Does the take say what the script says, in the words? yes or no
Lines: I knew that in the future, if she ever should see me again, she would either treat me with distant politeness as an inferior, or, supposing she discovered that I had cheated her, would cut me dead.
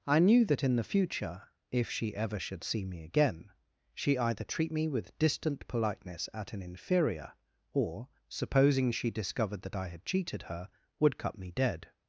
no